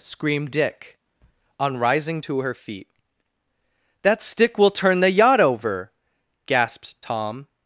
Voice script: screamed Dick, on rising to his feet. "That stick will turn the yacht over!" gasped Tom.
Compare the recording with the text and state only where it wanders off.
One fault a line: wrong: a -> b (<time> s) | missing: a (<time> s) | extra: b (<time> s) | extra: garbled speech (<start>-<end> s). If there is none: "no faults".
wrong: his -> her (2.4 s)